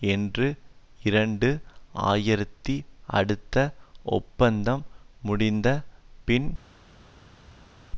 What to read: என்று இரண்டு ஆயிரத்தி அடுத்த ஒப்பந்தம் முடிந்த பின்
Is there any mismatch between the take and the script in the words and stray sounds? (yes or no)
no